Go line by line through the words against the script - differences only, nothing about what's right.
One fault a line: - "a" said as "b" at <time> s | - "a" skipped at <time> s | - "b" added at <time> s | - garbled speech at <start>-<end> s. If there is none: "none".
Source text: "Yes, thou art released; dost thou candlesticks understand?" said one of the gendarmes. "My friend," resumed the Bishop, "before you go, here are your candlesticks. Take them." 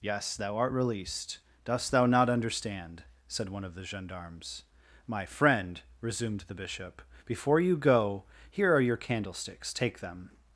- "candlesticks" said as "not" at 2.1 s